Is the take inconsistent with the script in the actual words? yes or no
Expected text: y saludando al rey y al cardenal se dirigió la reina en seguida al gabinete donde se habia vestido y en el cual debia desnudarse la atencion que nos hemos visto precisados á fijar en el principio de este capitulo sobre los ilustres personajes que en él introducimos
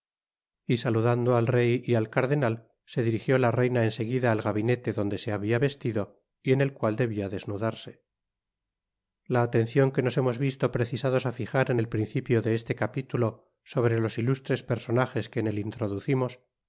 no